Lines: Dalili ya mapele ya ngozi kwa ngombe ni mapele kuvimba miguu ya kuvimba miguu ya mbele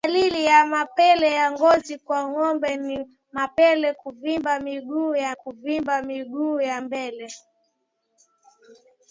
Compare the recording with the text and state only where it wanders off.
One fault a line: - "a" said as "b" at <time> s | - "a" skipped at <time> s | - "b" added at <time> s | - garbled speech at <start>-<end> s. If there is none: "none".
none